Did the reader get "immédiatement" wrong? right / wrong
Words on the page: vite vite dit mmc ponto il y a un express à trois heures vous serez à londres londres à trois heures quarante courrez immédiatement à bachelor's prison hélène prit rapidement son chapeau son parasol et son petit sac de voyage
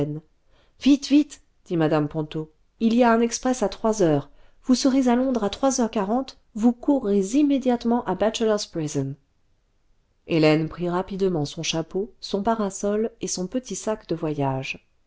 right